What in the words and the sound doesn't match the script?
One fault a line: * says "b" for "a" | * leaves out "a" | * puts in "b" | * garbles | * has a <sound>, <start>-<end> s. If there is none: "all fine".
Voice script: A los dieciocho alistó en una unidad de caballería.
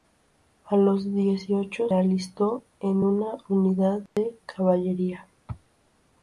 * has a dropout, 4.1-4.2 s